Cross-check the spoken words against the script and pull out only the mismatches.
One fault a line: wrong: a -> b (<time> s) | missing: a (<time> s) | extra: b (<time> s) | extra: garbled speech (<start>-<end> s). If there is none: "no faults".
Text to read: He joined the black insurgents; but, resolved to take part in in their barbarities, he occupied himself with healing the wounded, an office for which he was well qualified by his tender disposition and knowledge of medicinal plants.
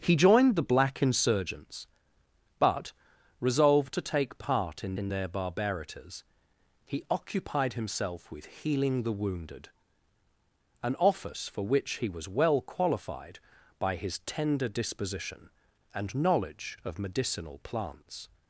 no faults